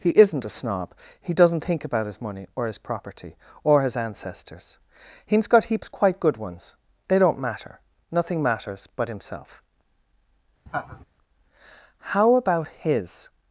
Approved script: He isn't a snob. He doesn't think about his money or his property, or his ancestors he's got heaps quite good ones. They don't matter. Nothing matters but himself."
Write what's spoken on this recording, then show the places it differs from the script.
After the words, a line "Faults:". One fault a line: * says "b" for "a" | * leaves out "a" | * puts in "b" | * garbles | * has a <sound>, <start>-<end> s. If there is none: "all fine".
He isn't a snob. He doesn't think about his money or his property, or his ancestors he's got heaps quite good ones. They don't matter. Nothing matters but himself." "How about his
Faults:
* has a laugh, 10.7-11.0 s
* puts in "How about his"